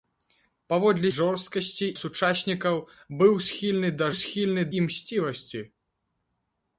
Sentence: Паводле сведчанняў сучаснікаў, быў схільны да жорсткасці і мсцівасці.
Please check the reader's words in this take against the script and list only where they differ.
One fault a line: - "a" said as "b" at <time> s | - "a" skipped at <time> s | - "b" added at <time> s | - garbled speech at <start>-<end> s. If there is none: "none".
- "сведчанняў" said as "жорсткасці" at 1.2 s
- "жорсткасці" said as "схільны" at 4.2 s